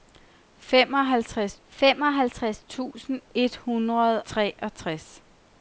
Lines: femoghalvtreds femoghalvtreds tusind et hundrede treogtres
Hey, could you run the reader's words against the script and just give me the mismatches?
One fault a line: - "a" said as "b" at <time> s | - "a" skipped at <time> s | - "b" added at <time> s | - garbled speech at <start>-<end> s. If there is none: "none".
none